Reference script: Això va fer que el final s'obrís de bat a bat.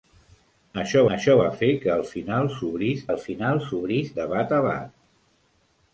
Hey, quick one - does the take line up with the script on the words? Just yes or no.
no